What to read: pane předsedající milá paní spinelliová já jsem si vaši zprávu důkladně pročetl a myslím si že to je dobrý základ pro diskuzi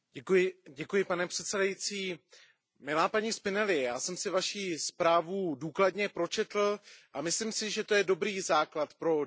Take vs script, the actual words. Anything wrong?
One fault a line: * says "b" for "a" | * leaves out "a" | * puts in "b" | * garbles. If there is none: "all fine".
all fine